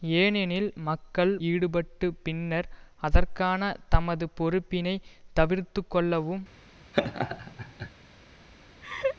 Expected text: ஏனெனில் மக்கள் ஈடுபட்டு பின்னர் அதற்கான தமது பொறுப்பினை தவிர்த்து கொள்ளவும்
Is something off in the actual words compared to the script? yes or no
no